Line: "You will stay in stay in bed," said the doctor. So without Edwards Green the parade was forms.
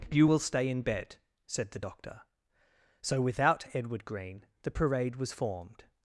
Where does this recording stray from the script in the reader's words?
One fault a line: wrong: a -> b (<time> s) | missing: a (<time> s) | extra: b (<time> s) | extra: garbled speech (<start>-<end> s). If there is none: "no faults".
missing: stay in (0.8 s)
wrong: Edwards -> Edward (3.7 s)
wrong: forms -> formed (5.3 s)